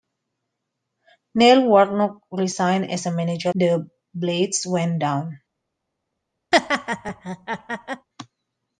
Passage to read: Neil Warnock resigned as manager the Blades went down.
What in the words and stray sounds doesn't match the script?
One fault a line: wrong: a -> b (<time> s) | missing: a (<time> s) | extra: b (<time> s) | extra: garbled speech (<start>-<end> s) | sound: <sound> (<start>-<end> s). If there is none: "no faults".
sound: laugh (6.5-8.1 s)